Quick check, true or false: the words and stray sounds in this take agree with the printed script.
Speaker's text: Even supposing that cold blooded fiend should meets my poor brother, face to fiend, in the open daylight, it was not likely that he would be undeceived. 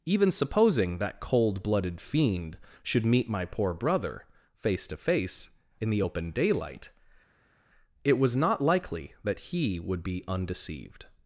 false